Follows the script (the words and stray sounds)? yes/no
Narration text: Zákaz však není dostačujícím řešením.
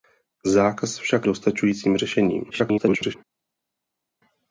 no